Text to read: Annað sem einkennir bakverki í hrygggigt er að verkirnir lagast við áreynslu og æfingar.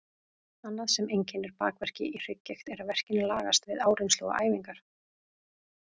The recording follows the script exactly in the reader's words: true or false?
true